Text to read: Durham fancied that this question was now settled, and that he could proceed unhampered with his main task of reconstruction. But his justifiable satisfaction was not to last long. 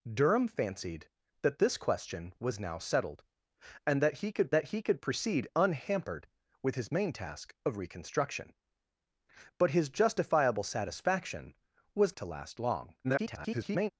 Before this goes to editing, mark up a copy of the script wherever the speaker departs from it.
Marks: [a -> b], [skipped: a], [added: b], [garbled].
Durham fancied that this question was now settled, and that he could [added: that he could] proceed unhampered with his main task of reconstruction. But his justifiable satisfaction was [skipped: not] to last long. [garbled]